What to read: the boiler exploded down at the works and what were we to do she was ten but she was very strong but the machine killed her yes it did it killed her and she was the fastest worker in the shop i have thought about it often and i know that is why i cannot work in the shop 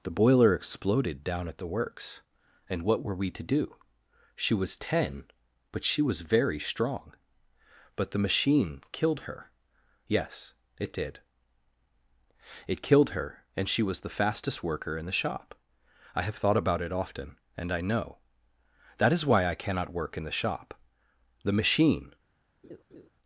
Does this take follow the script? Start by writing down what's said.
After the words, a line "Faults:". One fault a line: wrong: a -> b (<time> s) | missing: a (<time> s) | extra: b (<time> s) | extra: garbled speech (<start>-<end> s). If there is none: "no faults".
the boiler exploded down at the works and what were we to do she was ten but she was very strong but the machine killed her yes it did it killed her and she was the fastest worker in the shop i have thought about it often and i know that is why i cannot work in the shop the machine
Faults:
extra: the machine (21.4 s)